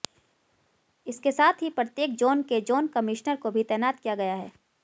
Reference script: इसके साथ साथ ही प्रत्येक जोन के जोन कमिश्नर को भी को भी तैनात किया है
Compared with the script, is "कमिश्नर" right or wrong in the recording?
right